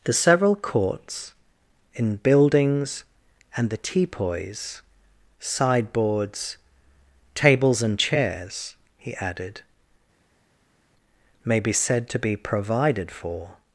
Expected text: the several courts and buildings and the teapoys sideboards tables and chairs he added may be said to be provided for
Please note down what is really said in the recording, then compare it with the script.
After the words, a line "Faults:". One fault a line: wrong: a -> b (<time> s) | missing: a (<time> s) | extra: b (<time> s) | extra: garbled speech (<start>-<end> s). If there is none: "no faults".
the several courts in buildings and the teapoys sideboards tables and chairs he added may be said to be provided for
Faults:
wrong: and -> in (1.9 s)